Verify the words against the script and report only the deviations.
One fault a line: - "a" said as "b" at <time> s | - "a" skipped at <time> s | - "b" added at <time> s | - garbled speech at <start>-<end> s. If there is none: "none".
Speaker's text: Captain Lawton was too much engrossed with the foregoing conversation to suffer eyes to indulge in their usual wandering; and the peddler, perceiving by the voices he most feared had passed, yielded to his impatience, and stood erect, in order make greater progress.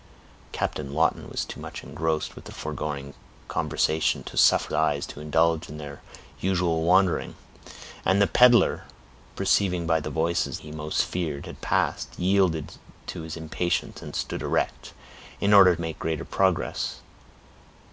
none